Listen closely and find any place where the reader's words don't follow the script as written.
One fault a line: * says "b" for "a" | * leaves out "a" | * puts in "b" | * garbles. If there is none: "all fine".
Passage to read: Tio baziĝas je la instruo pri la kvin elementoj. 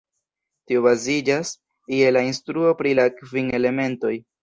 all fine